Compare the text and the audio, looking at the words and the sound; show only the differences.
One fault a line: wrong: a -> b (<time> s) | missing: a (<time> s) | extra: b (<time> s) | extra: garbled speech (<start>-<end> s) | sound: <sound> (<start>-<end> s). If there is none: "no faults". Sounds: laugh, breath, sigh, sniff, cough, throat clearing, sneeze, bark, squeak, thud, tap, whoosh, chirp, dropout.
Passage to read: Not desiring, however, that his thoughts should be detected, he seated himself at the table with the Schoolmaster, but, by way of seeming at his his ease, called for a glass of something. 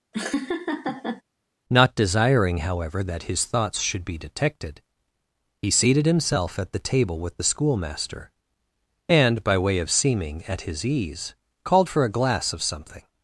sound: laugh (0.1-1.2 s)
wrong: but -> and (9.1 s)
missing: his (10.9 s)